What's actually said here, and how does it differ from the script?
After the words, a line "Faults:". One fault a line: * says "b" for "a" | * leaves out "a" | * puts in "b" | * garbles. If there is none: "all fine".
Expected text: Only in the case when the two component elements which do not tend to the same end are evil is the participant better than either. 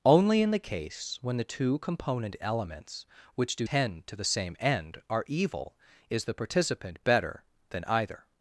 Only in the case when the two component elements which do tend to the same end are evil is the participant better than either.
Faults:
* leaves out "not"